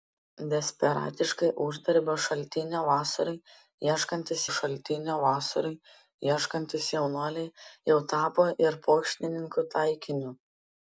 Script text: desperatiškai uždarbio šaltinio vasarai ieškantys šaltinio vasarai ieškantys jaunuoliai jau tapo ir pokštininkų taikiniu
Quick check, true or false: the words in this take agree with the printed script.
true